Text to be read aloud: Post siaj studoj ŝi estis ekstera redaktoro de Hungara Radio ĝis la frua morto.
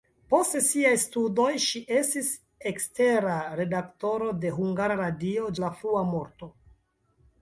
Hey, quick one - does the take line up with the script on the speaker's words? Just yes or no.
no